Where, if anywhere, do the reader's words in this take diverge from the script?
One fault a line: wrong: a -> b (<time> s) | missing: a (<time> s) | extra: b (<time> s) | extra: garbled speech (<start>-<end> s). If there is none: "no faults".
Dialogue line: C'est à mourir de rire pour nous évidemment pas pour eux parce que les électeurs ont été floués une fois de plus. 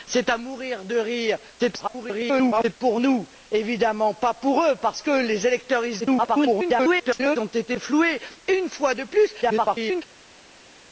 extra: garbled speech (1.6-2.8 s)
extra: garbled speech (6.0-7.4 s)
extra: garbled speech (9.4-10.0 s)